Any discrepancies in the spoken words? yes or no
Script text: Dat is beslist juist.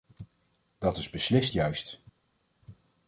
no